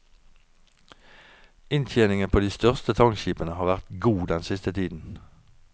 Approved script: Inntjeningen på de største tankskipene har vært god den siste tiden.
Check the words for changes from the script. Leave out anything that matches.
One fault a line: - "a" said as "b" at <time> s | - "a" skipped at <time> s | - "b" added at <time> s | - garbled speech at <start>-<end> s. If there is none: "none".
none